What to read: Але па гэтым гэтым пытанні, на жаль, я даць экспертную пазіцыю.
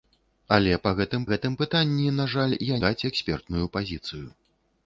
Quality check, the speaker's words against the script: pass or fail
pass